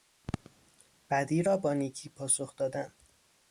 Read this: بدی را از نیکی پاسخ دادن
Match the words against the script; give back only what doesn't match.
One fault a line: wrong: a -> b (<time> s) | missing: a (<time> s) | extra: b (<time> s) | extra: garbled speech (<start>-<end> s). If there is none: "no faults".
wrong: از -> با (1.6 s)